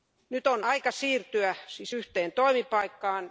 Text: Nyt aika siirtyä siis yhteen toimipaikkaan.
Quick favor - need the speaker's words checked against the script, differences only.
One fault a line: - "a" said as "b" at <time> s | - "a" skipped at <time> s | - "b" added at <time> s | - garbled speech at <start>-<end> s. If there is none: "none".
- "on" added at 0.5 s